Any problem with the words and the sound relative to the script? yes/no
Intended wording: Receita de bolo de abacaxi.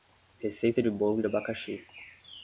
no